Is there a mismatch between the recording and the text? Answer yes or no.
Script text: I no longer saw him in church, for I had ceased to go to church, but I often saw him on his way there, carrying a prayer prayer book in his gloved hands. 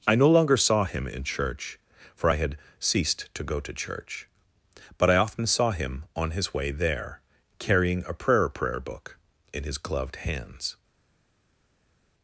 no